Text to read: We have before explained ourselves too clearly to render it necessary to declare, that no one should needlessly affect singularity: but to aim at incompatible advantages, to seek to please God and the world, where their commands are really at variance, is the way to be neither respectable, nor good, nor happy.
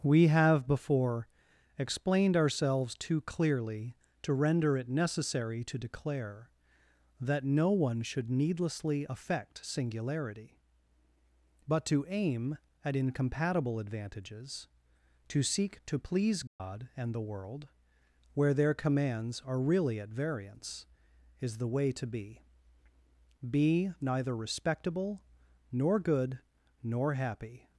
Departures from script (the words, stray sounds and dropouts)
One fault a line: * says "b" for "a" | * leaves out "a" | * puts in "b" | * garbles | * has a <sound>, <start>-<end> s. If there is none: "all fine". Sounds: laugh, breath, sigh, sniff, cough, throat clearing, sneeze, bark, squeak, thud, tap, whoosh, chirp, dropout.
* has a dropout, 16.5-16.6 s
* puts in "be"